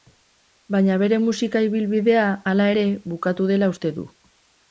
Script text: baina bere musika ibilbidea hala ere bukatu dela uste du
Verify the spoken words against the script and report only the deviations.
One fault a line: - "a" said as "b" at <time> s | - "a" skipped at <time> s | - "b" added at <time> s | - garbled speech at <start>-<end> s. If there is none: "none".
none